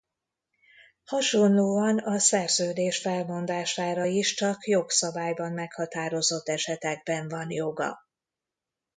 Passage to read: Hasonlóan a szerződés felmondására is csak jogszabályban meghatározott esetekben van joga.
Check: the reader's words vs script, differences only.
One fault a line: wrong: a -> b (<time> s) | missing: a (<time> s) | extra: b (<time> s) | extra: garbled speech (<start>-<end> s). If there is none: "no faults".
no faults